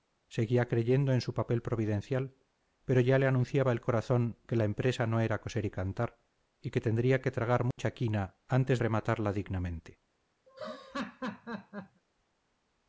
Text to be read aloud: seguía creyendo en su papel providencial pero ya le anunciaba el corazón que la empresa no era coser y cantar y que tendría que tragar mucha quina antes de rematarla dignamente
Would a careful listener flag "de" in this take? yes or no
yes